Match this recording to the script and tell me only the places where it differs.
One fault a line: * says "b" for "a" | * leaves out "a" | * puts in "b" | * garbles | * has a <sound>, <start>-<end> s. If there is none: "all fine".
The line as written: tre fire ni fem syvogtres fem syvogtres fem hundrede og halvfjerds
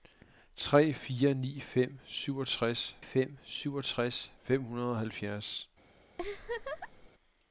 * has a laugh, 6.2-7.1 s